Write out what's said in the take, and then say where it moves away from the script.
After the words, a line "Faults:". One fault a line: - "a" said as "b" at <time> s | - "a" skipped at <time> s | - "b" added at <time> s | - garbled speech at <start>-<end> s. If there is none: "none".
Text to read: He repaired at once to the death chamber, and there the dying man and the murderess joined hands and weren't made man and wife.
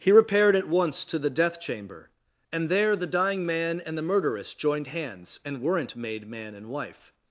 He repaired at once to the death chamber, and there the dying man and the murderess joined hands and weren't made man and wife.
Faults:
none